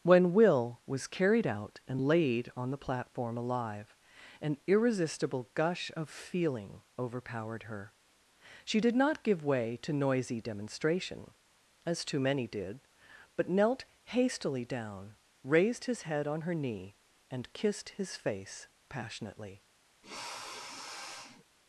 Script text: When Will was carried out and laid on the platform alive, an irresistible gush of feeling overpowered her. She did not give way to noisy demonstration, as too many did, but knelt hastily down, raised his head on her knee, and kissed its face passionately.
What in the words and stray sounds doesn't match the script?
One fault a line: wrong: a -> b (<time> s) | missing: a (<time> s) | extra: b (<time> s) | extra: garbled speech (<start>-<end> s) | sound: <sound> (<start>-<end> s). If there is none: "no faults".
wrong: its -> his (17.9 s)
sound: sniff (20.0-21.4 s)